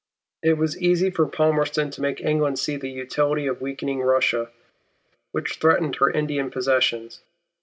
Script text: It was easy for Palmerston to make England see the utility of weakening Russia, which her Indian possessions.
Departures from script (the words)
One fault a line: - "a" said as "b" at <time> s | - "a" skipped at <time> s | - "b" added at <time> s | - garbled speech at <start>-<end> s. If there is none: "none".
- "threatened" added at 5.5 s